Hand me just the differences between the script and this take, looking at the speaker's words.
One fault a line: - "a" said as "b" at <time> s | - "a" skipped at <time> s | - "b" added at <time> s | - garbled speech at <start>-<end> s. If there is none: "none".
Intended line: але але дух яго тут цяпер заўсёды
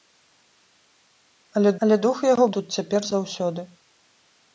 none